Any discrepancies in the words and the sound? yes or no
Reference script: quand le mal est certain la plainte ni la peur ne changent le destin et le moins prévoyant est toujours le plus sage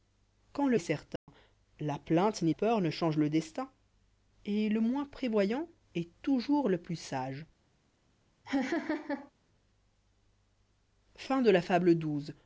yes